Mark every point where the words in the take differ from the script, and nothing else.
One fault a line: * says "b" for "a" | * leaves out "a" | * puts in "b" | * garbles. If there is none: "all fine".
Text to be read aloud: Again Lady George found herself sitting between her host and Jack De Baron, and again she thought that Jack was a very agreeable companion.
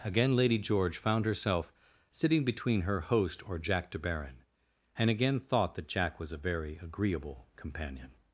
* says "or" for "and"
* leaves out "she"